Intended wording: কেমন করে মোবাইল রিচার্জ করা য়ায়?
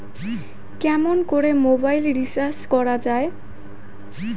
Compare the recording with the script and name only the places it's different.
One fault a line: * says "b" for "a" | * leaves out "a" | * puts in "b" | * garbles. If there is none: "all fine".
all fine